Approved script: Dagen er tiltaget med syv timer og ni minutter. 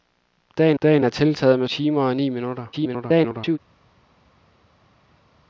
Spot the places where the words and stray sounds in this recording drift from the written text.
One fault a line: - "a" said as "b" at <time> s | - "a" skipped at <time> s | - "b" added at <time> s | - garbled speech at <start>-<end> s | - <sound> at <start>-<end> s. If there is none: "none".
- "dagen" added at 0.8 s
- "syv" skipped at 1.7 s
- garbled speech at 2.7-3.6 s